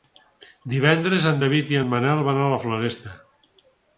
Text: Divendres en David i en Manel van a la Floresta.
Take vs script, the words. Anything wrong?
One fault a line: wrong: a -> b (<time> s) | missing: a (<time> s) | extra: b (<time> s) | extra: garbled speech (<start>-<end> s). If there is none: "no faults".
no faults